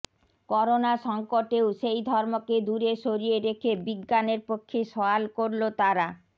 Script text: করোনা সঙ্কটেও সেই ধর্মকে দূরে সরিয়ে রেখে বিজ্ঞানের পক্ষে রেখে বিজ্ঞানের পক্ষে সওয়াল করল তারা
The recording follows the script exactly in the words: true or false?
false